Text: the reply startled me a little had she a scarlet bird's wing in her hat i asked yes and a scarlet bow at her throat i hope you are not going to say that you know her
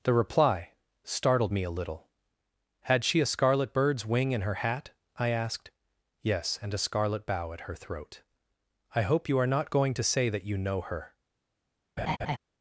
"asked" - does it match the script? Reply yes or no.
yes